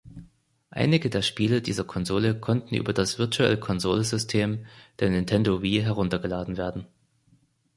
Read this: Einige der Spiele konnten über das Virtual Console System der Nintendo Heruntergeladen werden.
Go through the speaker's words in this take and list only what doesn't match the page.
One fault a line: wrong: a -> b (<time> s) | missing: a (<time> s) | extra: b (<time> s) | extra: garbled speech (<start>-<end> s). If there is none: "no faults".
extra: dieser Konsole (1.6 s)
extra: Wii (5.6 s)